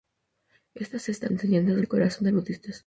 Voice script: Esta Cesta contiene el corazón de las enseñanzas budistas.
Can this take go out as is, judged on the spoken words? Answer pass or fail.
fail